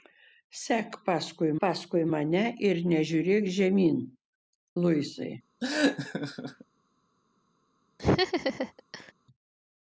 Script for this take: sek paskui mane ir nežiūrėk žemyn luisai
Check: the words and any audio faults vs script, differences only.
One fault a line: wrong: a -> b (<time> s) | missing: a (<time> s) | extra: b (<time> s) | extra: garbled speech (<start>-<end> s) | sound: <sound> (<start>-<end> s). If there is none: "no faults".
extra: paskui (1.6 s)
sound: laugh (5.6-6.6 s)
sound: laugh (8.0-9.1 s)